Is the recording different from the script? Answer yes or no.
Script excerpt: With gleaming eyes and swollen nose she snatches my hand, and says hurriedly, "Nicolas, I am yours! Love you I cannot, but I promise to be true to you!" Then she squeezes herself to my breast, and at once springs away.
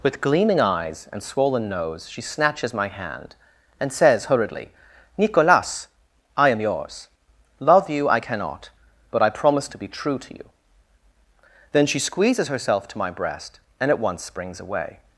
no